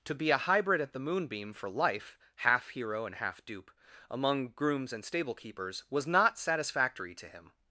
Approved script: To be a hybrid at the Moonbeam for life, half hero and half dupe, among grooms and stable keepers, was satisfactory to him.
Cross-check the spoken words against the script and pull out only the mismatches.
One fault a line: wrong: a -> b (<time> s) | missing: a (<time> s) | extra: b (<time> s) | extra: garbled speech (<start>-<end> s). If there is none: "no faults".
extra: not (6.1 s)